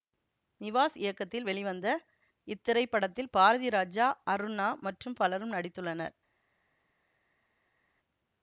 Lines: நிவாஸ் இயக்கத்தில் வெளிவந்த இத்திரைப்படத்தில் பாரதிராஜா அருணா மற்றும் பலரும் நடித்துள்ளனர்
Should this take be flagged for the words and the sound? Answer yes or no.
no